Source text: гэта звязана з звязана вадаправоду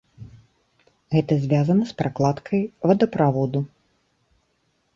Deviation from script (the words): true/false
true